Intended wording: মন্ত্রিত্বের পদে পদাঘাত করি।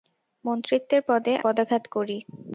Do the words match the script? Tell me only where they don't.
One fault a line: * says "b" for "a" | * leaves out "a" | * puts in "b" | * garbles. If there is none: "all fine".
all fine